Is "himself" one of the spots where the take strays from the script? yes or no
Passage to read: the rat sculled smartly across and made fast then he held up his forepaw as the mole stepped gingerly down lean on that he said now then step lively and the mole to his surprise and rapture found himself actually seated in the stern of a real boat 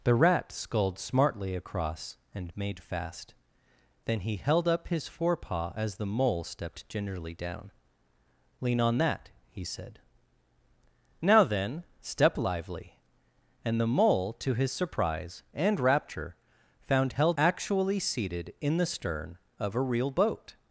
yes